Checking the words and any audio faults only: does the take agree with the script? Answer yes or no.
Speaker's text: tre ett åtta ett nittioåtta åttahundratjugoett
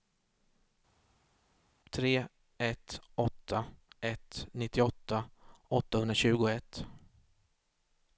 yes